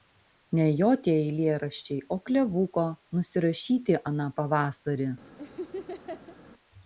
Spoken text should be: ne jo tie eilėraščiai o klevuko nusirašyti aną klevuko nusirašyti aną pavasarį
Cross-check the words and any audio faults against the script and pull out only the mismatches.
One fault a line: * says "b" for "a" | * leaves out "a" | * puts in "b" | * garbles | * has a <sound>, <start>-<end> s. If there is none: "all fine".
* leaves out "klevuko nusirašyti aną"
* has a laugh, 5.4-6.4 s